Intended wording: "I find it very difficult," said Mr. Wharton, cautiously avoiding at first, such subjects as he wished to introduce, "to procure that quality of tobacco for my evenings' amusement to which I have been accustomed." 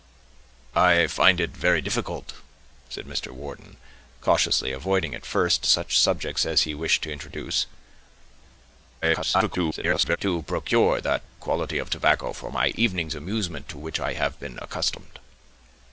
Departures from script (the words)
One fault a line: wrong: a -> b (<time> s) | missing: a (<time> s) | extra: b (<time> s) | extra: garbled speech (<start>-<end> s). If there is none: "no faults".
extra: garbled speech (9.0-10.2 s)